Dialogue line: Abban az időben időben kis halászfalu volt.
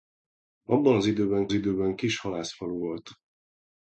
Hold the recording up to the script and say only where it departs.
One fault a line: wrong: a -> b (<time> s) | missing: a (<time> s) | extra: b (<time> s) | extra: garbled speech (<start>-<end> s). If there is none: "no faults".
no faults